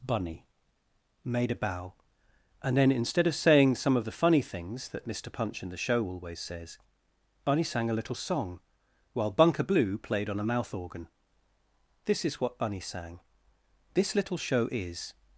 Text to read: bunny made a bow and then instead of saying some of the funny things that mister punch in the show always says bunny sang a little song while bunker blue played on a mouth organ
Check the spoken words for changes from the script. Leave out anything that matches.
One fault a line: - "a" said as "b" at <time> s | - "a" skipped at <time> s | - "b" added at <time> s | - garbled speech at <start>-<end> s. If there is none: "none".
- "this is what bunny sang this little show is" added at 12.0 s